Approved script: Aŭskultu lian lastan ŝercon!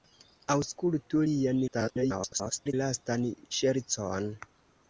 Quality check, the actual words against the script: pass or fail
fail